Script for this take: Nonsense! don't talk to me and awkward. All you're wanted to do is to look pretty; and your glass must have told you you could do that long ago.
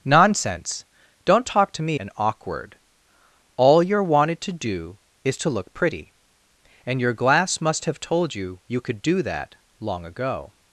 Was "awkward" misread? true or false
false